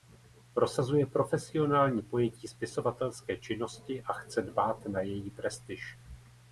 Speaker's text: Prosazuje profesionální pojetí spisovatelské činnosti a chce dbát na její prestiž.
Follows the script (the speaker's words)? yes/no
yes